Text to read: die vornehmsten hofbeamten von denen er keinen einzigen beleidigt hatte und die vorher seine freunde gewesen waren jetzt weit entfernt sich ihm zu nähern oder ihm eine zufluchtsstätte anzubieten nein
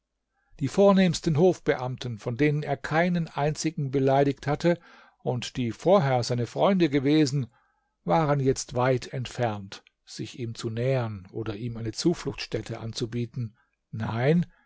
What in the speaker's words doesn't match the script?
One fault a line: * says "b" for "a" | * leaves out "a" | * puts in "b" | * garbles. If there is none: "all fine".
all fine